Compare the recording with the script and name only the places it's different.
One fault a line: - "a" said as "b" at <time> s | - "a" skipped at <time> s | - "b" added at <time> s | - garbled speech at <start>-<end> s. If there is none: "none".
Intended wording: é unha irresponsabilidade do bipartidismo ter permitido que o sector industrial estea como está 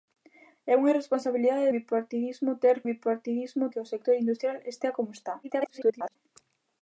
- "do" skipped at 1.7 s
- "permitido" said as "bipartidismo" at 2.9 s
- garbled speech at 5.4-6.2 s